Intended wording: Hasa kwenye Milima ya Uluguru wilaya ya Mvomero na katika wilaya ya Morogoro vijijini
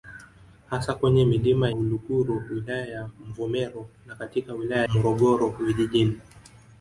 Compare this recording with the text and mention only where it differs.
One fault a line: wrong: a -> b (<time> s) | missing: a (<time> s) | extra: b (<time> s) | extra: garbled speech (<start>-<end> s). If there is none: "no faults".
missing: ya (1.7 s)
missing: ya (4.8 s)